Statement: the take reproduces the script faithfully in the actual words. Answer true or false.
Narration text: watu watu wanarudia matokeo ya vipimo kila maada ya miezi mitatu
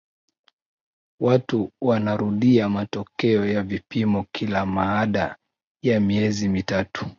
false